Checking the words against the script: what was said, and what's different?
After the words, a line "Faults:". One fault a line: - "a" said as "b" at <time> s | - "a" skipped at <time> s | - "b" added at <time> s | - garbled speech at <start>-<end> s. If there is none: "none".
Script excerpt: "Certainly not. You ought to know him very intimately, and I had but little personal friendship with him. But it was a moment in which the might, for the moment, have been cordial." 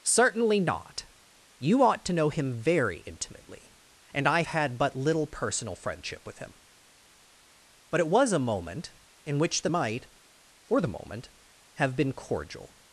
"Certainly not. You ought to know him very intimately, and I had but little personal friendship with him. But it was a moment in which the might, for the moment, have been cordial."
Faults:
none